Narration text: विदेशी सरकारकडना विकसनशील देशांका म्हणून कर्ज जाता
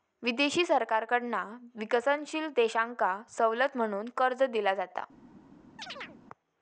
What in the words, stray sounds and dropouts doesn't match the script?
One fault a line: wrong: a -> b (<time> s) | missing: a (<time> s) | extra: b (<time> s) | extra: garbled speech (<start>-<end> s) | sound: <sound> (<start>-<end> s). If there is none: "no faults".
extra: सवलत (3.3 s)
extra: दिला (4.4 s)
sound: chirp (5.8-6.2 s)